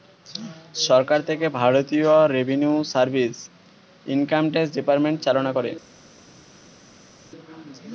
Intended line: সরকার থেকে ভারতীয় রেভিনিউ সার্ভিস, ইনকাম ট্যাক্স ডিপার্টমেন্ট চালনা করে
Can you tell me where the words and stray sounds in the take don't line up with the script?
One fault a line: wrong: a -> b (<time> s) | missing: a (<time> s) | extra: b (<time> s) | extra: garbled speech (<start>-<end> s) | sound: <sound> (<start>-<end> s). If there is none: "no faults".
no faults